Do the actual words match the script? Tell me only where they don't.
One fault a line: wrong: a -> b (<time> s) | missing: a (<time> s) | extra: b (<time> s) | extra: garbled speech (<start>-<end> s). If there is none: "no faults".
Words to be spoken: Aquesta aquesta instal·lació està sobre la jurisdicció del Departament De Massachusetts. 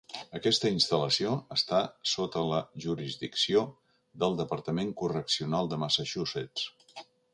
missing: aquesta (0.7 s)
wrong: sobre -> sota (2.1 s)
extra: Correccional (5.0 s)